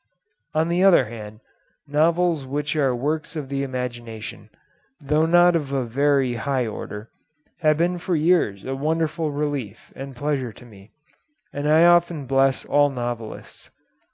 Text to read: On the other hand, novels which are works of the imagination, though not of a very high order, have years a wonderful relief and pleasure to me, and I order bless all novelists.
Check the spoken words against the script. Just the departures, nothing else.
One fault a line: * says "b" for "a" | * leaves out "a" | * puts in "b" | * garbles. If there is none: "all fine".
* puts in "been for"
* says "often" for "order"